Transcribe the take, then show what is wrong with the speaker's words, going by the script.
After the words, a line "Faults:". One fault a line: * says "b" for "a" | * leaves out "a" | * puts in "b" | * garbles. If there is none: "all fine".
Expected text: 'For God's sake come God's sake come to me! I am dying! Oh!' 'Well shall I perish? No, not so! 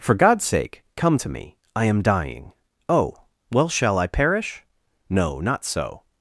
'For God's sake come to me! I am dying! Oh!' 'Well shall I perish? No, not so!
Faults:
* leaves out "God's sake come"